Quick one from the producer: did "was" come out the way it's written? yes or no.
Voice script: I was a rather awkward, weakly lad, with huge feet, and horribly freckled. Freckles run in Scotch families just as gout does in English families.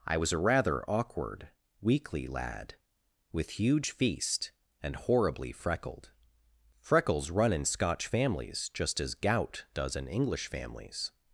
yes